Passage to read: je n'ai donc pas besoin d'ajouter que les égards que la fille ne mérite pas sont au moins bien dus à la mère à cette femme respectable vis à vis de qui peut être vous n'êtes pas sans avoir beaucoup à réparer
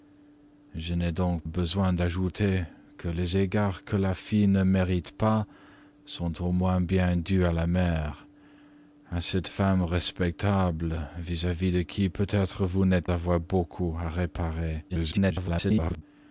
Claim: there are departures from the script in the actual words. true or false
true